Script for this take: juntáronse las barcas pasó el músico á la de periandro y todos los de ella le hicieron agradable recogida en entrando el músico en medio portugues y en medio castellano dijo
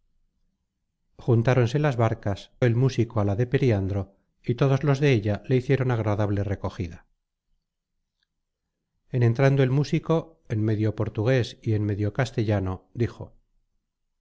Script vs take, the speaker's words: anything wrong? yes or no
yes